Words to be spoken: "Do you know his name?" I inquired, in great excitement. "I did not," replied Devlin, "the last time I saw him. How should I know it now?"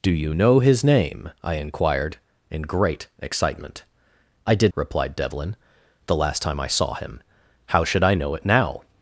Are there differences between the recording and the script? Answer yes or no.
yes